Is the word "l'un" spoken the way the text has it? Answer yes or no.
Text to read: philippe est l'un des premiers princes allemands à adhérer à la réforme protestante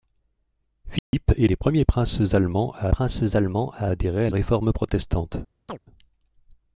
no